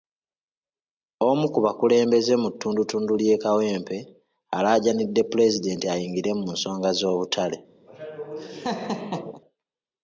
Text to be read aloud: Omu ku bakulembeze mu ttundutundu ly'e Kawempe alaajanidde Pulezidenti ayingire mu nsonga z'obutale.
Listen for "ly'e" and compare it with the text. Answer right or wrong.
right